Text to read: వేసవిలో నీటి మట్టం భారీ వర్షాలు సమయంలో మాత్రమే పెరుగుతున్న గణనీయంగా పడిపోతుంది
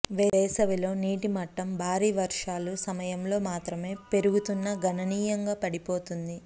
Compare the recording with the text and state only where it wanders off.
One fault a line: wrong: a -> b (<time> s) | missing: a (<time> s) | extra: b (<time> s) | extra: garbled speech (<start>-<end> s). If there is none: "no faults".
no faults